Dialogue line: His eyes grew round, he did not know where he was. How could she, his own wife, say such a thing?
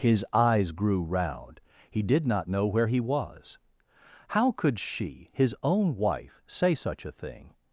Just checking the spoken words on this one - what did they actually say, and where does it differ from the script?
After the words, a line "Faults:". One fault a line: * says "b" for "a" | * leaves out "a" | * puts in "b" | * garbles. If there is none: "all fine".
His eyes grew round, he did not know where he was. How could she, his own wife, say such a thing?
Faults:
all fine